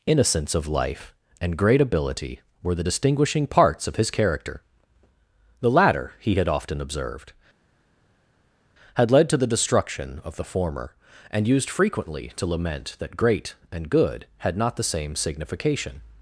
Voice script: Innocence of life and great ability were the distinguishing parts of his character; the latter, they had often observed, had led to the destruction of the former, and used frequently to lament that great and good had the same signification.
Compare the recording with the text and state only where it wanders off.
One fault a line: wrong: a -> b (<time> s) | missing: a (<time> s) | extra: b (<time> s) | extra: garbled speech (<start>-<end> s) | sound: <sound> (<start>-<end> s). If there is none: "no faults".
wrong: they -> he (6.2 s)
extra: not (14.6 s)